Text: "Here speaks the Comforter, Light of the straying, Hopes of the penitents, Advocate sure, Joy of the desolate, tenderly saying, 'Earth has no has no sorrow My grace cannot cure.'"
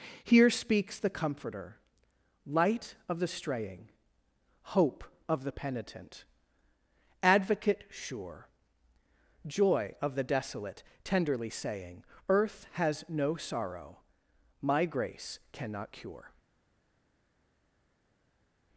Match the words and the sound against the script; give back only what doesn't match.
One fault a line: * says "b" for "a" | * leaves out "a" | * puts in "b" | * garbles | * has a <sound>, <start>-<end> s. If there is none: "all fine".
* says "Hope" for "Hopes"
* says "penitent" for "penitents"
* leaves out "has no"